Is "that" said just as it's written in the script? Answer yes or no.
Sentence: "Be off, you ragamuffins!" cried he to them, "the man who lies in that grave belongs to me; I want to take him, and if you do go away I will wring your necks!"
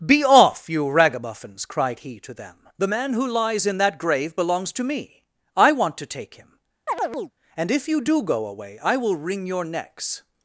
yes